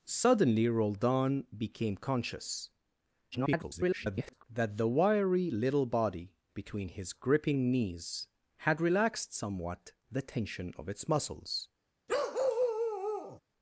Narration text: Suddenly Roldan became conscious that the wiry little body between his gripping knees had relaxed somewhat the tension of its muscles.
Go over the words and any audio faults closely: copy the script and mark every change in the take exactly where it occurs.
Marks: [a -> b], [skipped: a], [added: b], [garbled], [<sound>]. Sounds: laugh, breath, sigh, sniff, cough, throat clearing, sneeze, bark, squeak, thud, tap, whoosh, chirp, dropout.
Suddenly Roldan became conscious [garbled] that the wiry little body between his gripping knees had relaxed somewhat the tension of its muscles. [bark]